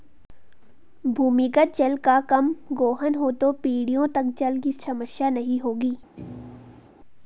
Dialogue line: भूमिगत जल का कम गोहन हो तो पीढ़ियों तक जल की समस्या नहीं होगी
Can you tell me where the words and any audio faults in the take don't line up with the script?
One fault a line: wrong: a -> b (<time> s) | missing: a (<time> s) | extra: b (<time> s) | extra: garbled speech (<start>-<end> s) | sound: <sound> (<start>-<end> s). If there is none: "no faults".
sound: thud (6.2-6.9 s)